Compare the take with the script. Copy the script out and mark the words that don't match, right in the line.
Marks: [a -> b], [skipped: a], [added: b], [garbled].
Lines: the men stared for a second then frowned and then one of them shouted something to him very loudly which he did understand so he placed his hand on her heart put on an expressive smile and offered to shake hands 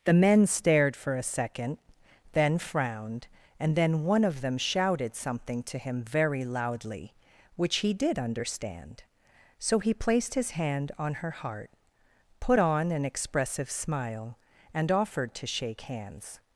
the men stared for a second then frowned and then one of them shouted something to him very loudly which he did understand so he placed his hand on her heart put on an expressive smile and offered to shake hands